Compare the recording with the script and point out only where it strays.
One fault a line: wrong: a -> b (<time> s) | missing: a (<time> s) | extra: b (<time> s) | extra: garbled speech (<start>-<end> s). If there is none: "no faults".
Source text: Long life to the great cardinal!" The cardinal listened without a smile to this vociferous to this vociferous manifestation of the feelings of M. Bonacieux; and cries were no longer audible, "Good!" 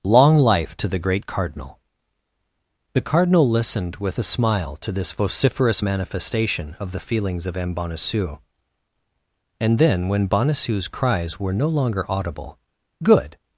wrong: without -> with (4.0 s)
missing: to this vociferous (5.8 s)
extra: then when Bonacieux's (9.8 s)